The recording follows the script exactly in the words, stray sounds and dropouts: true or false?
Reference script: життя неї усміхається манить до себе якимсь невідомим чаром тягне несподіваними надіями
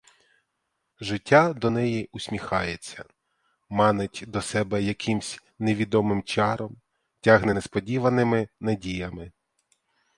false